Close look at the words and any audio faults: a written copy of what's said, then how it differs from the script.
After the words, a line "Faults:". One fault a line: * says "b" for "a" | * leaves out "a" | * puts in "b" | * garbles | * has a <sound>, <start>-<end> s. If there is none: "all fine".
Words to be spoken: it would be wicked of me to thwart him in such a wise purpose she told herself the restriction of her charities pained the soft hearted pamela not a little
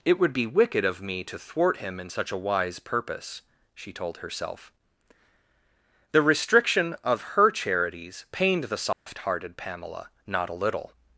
it would be wicked of me to thwart him in such a wise purpose she told herself the restriction of her charities pained the soft hearted pamela not a little
Faults:
* has a dropout, 8.9-9.1 s